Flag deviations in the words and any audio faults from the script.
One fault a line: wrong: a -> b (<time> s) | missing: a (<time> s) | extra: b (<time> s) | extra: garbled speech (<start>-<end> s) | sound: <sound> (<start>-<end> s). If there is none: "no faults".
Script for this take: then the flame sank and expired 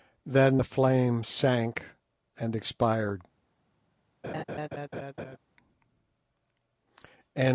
sound: laugh (4.2-5.4 s)